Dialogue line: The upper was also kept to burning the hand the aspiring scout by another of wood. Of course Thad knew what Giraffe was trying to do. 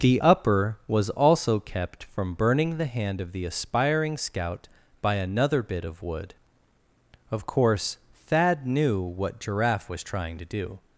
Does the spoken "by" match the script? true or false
true